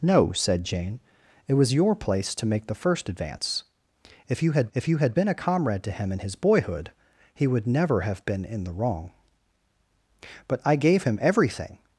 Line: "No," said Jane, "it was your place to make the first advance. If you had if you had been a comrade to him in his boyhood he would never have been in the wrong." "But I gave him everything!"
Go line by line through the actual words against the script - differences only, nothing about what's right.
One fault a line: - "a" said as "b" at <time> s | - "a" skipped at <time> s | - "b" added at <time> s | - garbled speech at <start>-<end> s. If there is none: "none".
none